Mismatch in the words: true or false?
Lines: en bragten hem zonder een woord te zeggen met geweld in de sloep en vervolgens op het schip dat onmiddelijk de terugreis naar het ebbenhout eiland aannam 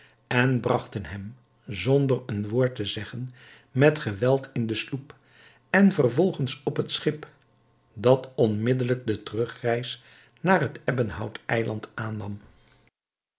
false